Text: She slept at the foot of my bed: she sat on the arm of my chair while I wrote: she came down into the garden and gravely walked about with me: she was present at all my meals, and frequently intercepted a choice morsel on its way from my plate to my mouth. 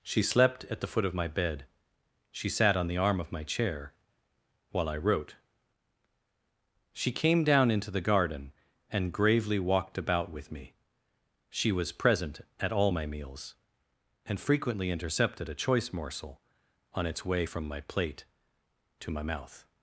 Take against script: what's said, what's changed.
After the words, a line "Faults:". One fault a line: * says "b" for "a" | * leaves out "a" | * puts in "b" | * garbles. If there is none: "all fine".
She slept at the foot of my bed: she sat on the arm of my chair while I wrote: she came down into the garden and gravely walked about with me: she was present at all my meals, and frequently intercepted a choice morsel on its way from my plate to my mouth.
Faults:
all fine